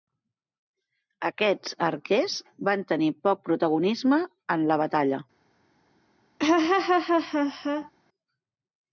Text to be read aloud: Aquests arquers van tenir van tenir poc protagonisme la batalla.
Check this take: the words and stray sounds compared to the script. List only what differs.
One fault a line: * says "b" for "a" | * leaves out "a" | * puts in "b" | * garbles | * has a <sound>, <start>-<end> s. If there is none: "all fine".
* leaves out "van tenir"
* puts in "en"
* has a laugh, 6.4-7.9 s